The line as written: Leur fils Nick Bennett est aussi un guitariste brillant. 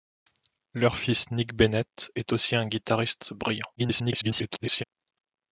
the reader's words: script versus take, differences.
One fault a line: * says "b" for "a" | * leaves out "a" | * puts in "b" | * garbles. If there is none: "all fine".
* garbles